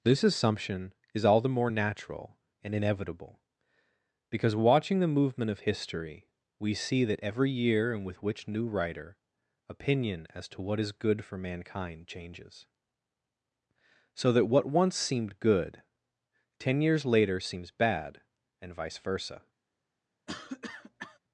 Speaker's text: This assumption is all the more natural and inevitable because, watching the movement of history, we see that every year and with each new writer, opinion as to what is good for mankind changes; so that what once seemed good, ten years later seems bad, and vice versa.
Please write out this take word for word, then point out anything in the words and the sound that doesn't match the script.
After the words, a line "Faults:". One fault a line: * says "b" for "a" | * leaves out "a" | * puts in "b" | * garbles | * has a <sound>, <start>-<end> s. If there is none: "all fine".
This assumption is all the more natural and inevitable because, watching the movement of history, we see that every year and with which new writer, opinion as to what is good for mankind changes; so that what once seemed good, ten years later seems bad, and vice versa.
Faults:
* says "which" for "each"
* has a cough, 20.3-21.2 s